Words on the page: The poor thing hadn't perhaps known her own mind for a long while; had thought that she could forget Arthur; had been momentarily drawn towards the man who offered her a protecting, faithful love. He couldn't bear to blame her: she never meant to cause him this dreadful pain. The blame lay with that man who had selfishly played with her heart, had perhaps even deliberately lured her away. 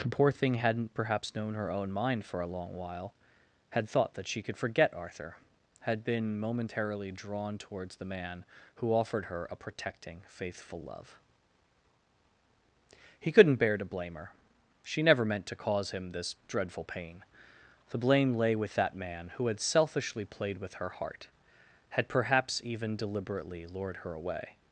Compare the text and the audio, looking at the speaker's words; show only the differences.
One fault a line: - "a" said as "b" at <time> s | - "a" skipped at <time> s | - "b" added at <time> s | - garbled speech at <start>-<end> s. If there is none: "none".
none